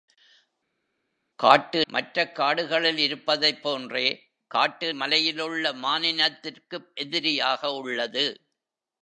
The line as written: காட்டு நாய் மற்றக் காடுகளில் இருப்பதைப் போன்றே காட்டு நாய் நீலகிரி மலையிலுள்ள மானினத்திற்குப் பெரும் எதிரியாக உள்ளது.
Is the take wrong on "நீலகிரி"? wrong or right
wrong